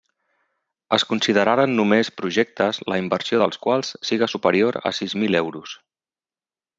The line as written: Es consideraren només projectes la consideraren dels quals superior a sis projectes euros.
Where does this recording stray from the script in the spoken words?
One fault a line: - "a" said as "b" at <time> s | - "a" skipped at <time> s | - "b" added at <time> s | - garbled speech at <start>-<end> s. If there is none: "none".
- "consideraren" said as "inversió" at 3.0 s
- "siga" added at 4.1 s
- "projectes" said as "mil" at 5.2 s